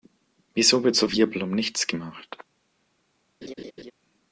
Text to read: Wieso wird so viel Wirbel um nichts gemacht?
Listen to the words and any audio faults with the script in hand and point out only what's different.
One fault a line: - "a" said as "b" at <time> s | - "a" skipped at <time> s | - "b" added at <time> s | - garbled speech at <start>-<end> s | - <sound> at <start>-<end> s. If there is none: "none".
- "viel" skipped at 1.1 s
- laugh at 3.4-3.9 s